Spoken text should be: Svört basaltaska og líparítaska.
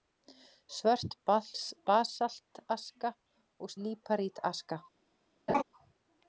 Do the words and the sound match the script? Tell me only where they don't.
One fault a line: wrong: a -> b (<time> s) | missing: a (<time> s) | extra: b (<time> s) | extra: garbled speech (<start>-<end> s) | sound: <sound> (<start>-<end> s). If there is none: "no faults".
sound: laugh (5.5-5.6 s)